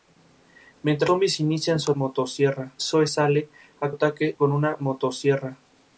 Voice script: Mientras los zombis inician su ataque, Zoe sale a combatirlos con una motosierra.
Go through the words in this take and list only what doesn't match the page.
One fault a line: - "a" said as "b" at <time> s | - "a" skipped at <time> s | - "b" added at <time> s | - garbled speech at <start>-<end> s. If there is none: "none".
- "los" skipped at 1.1 s
- "ataque" said as "motosierra" at 1.9 s
- "combatirlos" said as "ataque" at 3.9 s